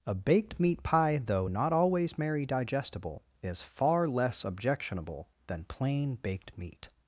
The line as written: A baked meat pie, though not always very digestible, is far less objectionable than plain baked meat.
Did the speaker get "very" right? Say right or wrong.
wrong